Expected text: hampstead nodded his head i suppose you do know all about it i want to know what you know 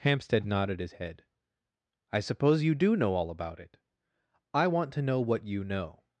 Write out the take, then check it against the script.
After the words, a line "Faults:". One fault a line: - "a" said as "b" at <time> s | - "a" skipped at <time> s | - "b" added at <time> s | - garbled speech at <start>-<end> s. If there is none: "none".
hampstead nodded his head i suppose you do know all about it i want to know what you know
Faults:
none